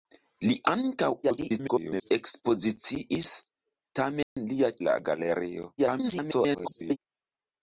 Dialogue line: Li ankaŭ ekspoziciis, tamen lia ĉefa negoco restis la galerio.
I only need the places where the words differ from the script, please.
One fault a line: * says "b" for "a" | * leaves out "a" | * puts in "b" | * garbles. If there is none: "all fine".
* garbles
* leaves out "ĉefa negoco restis"
* garbles